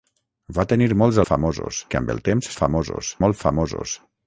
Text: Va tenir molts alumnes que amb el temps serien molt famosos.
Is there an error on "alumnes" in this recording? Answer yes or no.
yes